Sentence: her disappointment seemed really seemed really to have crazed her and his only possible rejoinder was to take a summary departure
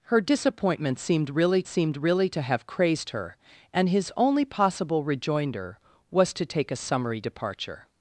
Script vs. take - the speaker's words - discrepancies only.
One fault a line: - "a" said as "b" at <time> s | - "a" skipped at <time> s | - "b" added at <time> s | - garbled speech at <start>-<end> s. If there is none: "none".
none